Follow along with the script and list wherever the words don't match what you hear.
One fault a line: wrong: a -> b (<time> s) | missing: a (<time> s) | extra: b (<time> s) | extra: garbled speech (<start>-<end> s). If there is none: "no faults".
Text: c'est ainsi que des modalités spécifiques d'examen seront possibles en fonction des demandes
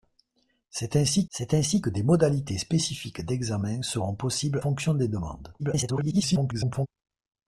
extra: c'est ainsi (1.3 s)
missing: en (4.6 s)
extra: garbled speech (5.6-6.9 s)